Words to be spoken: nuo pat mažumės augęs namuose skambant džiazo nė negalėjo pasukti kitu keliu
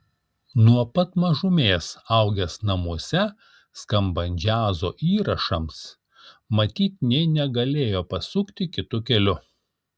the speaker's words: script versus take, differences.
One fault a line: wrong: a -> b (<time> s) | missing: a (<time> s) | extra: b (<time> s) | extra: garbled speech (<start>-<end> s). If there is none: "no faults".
extra: įrašams matyt (5.1 s)